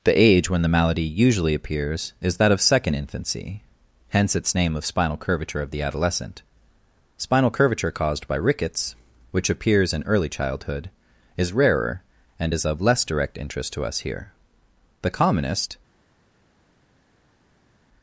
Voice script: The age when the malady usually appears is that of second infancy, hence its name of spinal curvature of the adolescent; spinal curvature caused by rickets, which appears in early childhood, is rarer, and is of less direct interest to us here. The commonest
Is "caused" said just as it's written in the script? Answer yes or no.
yes